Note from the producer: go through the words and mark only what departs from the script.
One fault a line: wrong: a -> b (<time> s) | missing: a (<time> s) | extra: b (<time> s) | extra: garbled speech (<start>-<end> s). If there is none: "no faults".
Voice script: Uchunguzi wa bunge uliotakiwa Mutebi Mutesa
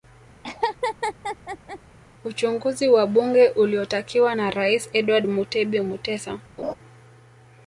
extra: na Rais Edward (4.3 s)